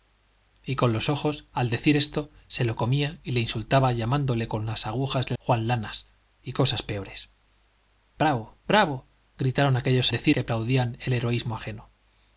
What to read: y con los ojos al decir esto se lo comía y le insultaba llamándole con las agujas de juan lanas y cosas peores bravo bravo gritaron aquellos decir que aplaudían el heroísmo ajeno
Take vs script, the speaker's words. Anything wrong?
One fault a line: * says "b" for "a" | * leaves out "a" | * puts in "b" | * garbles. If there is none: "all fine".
all fine